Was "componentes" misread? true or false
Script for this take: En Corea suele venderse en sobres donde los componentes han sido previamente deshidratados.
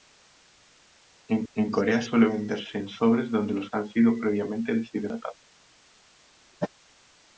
true